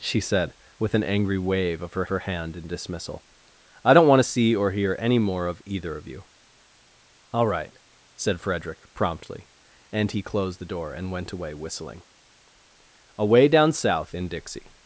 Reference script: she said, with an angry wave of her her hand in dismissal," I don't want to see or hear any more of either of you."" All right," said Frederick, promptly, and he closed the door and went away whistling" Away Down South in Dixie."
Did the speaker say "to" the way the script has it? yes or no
yes